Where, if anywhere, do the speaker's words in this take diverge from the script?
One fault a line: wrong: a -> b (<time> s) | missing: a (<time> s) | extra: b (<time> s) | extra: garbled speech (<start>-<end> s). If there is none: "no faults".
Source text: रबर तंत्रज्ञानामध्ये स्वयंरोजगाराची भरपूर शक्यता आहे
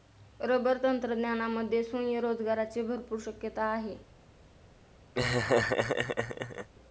no faults